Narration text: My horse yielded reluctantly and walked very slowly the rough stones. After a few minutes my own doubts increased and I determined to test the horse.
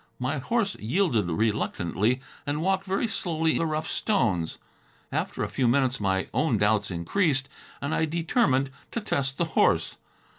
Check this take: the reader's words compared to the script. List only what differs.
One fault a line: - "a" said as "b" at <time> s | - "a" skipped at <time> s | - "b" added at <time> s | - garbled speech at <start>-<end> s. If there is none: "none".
none